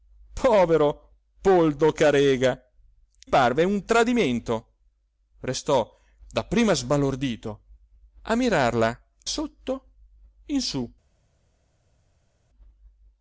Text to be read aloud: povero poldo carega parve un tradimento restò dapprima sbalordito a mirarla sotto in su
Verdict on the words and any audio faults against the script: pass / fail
pass